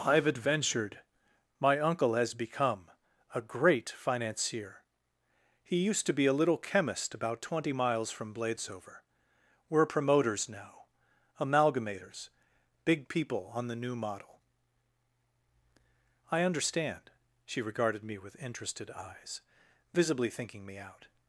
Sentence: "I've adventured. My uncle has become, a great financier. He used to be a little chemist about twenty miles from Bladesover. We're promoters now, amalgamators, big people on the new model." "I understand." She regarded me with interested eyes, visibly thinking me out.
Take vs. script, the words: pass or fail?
pass